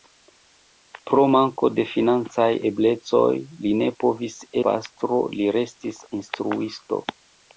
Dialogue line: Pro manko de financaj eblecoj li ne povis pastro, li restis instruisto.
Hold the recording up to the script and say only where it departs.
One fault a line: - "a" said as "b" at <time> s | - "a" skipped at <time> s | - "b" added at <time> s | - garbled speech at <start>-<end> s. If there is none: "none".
none